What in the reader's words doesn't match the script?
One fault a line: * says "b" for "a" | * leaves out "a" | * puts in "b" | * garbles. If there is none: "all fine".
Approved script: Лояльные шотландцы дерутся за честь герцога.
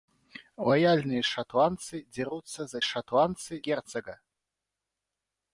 * says "шотландцы" for "честь"